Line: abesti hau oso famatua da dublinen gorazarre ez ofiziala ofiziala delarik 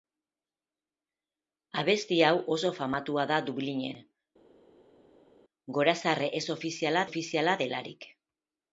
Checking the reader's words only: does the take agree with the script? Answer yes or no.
yes